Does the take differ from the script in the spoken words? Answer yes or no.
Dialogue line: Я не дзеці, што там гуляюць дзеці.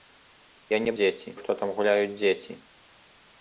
no